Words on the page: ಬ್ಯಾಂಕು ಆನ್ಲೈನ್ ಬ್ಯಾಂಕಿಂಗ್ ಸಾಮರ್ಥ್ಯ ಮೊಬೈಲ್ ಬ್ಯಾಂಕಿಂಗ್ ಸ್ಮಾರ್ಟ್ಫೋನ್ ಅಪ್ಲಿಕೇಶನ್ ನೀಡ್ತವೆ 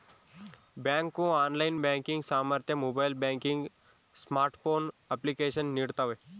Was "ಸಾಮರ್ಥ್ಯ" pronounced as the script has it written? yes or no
yes